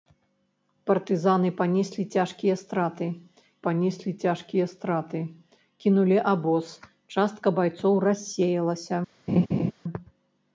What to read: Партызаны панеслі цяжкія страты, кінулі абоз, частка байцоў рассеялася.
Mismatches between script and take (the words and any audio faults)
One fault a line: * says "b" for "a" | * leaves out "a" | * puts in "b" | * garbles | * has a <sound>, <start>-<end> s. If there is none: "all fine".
* puts in "панеслі цяжкія страты"
* has a laugh, 9.3-9.7 s